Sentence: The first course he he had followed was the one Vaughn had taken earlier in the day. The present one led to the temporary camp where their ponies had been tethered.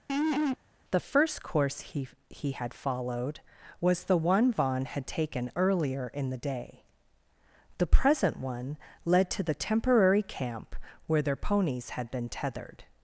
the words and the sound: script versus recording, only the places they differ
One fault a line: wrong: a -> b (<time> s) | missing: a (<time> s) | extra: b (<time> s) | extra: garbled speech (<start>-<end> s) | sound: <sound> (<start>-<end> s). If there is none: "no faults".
sound: laugh (0.1-0.6 s)